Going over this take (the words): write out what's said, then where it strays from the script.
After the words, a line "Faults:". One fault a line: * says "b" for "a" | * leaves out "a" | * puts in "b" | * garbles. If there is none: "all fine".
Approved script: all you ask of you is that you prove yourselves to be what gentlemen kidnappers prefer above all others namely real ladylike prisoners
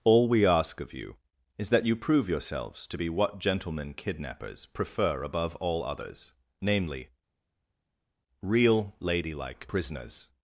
all we ask of you is that you prove yourselves to be what gentlemen kidnappers prefer above all others namely real ladylike prisoners
Faults:
* says "we" for "you"